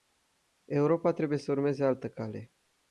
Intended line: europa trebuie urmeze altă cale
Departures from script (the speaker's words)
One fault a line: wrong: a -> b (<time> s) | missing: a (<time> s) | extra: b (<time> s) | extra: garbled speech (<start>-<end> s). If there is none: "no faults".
extra: să (1.4 s)